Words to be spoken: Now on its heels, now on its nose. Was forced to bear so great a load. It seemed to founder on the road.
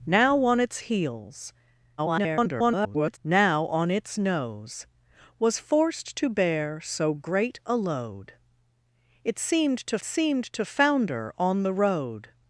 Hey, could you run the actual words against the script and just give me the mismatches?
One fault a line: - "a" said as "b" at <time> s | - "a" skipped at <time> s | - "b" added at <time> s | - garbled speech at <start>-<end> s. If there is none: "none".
- garbled speech at 2.0-3.2 s
- "seemed to" added at 10.0 s